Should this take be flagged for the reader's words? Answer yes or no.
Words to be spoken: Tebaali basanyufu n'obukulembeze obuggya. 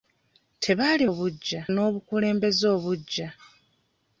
yes